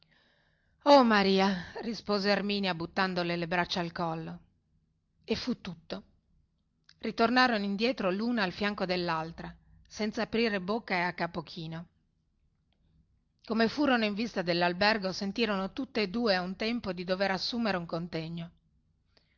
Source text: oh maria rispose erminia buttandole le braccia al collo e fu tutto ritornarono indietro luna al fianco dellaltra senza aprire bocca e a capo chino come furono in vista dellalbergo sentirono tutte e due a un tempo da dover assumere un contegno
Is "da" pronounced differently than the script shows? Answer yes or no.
yes